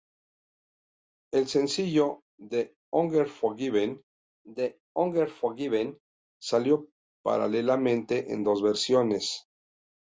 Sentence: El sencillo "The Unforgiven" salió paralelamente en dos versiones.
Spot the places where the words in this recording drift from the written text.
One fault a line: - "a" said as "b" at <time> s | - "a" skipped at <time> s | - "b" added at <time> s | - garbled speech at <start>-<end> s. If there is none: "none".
- "the Unforgiven" added at 4.5 s